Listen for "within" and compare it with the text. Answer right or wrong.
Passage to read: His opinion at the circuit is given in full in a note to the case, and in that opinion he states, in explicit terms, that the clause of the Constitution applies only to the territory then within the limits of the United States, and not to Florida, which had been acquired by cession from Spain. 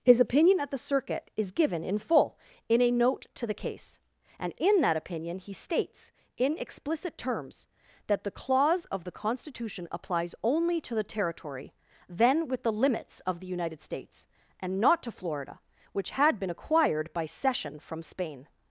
wrong